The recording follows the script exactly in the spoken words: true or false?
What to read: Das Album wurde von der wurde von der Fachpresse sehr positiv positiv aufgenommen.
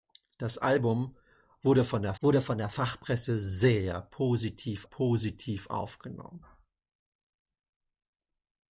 true